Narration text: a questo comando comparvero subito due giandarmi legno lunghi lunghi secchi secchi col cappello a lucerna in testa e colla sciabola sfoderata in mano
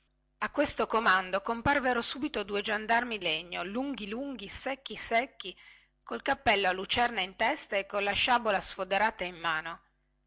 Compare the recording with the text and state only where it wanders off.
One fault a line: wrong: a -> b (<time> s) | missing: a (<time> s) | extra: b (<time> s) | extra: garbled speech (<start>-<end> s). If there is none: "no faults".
no faults